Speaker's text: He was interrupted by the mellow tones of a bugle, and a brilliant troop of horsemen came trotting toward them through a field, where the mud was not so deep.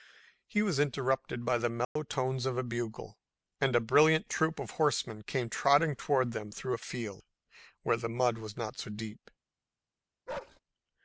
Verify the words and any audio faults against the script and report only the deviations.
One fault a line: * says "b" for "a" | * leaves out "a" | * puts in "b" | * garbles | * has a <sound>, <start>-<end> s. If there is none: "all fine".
* has a dropout, 1.8-2.0 s
* has a bark, 10.3-10.6 s